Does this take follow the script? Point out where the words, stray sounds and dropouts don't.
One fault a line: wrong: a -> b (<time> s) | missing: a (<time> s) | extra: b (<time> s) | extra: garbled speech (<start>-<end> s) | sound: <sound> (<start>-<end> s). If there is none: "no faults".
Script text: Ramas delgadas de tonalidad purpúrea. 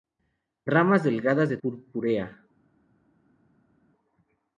missing: tonalidad (1.6 s)